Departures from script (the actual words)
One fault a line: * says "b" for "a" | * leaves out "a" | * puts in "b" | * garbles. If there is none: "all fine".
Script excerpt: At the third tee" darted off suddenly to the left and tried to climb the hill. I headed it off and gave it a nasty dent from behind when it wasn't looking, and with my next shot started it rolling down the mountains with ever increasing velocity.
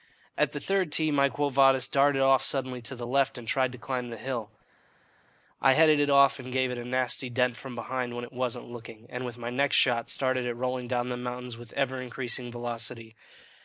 * puts in "my Quo Vadis"